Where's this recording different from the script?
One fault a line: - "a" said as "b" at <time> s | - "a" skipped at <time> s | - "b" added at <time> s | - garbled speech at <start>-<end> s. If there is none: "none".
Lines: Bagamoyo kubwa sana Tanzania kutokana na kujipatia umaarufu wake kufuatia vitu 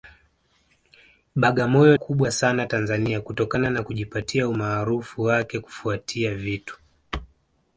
none